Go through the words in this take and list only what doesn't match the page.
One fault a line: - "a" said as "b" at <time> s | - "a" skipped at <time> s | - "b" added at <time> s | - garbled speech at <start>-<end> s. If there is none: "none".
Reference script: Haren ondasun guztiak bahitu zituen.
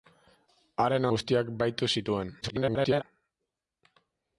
- "ondasun" skipped at 1.1 s
- garbled speech at 2.4-3.0 s